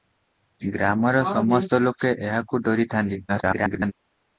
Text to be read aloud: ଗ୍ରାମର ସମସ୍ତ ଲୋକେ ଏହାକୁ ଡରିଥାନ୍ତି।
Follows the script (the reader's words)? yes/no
no